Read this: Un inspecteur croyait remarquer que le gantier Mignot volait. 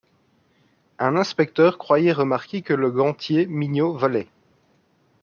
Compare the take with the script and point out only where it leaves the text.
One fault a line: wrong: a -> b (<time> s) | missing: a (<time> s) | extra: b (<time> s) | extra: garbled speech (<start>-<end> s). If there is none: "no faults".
no faults